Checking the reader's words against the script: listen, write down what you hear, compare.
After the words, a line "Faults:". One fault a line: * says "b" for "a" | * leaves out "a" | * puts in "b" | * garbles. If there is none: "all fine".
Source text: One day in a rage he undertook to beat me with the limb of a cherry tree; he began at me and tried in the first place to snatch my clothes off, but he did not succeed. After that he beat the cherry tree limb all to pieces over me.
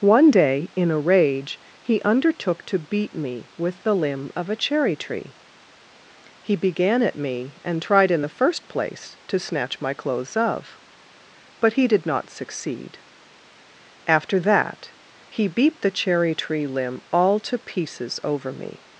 One day in a rage he undertook to beat me with the limb of a cherry tree; he began at me and tried in the first place to snatch my clothes of, but he did not succeed. After that he beat the cherry tree limb all to pieces over me.
Faults:
* says "of" for "off"